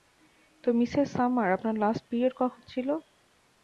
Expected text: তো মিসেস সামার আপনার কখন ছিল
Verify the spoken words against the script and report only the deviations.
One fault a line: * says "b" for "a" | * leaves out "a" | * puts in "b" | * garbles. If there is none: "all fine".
* puts in "লাস্ট পিরিয়ড"